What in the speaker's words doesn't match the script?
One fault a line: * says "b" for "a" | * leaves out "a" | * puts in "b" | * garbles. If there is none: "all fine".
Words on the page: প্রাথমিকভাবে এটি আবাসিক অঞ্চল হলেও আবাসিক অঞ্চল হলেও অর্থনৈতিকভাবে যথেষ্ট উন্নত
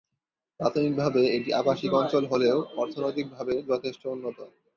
* leaves out "আবাসিক অঞ্চল হলেও"